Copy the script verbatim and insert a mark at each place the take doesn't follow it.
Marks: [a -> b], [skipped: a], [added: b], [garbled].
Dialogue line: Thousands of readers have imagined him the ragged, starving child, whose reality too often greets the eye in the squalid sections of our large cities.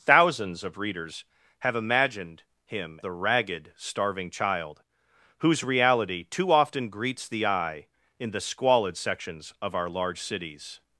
Thousands of readers have imagined him the ragged, starving child, whose reality too often greets the eye in the squalid sections of our large cities.